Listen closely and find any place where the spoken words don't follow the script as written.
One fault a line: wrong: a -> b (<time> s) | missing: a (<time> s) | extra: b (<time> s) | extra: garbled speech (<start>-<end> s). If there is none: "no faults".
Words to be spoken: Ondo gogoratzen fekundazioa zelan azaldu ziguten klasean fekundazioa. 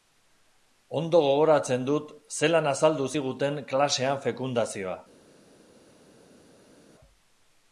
wrong: fekundazioa -> dut (1.9 s)